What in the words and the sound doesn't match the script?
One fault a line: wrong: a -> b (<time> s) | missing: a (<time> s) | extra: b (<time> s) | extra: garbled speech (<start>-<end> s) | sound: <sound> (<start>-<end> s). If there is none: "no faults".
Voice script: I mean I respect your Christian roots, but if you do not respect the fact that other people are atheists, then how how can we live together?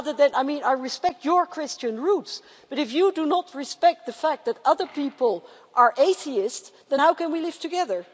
missing: how (7.1 s)